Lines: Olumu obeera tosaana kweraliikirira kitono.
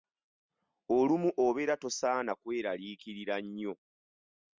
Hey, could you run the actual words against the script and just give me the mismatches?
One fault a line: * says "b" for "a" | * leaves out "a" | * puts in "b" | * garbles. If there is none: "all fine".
* says "nnyo" for "kitono"